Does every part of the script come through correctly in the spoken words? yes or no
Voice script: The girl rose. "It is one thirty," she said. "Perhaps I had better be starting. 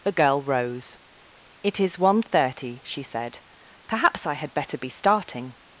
yes